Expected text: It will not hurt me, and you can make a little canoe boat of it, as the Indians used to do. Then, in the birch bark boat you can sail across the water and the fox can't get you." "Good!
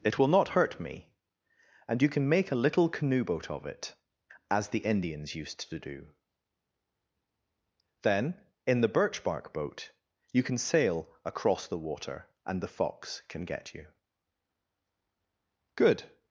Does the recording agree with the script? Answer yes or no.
no